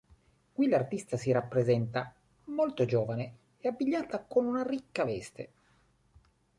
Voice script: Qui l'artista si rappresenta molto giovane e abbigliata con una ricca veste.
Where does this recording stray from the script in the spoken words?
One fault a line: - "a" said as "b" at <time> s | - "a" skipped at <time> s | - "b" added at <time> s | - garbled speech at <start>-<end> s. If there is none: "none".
none